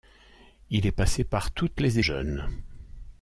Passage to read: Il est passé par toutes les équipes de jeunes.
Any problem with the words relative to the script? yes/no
yes